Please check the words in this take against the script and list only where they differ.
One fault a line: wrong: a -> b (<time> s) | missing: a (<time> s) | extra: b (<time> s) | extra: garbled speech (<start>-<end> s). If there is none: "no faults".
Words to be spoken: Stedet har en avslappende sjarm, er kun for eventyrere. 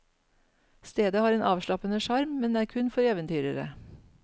extra: men (2.4 s)